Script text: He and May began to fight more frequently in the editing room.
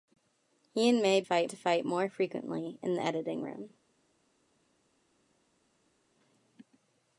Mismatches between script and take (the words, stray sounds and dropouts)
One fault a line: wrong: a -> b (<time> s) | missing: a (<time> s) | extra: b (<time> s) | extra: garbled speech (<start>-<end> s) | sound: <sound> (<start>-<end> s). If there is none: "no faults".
wrong: began -> fight (1.2 s)